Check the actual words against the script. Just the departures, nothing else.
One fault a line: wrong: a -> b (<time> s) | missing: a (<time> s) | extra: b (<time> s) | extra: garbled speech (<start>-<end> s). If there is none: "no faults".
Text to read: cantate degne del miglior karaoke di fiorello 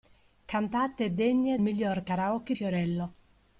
missing: del (1.6 s)
missing: di (2.5 s)